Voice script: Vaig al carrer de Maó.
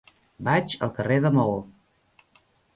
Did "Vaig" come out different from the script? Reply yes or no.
no